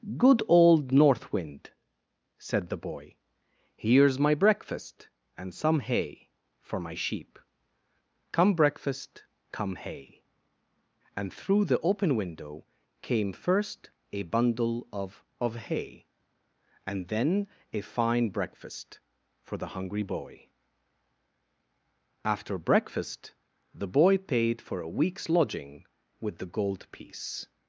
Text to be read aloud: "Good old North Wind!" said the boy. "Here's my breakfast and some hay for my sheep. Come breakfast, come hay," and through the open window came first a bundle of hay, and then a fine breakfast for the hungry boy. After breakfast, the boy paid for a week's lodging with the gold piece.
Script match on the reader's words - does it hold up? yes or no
no